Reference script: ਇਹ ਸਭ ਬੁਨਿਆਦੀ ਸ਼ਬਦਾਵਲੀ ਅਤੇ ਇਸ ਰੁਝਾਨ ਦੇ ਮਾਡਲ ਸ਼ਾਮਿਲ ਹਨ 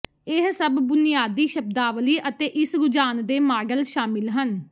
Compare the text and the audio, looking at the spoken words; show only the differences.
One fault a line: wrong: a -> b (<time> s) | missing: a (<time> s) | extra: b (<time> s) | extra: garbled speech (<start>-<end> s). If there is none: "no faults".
no faults